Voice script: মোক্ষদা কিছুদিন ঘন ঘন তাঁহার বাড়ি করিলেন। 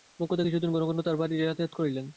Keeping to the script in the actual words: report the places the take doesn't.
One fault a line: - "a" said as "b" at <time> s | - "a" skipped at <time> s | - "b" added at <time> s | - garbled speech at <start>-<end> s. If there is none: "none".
- "যাতায়াত" added at 1.4 s